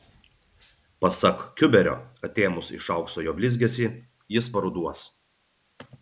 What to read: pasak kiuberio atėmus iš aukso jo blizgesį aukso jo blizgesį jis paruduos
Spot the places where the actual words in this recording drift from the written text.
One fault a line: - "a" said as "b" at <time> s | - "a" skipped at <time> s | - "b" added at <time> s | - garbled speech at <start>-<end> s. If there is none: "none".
- "aukso jo blizgesį" skipped at 3.9 s